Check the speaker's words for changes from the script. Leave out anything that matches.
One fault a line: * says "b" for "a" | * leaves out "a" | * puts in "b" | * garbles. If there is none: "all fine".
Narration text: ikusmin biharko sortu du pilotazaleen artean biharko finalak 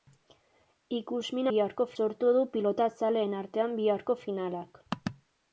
all fine